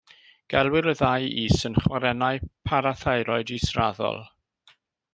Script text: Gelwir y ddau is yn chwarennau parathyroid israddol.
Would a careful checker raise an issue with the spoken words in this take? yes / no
no